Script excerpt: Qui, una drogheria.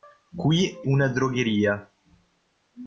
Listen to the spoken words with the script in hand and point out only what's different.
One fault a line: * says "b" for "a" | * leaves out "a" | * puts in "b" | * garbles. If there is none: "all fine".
all fine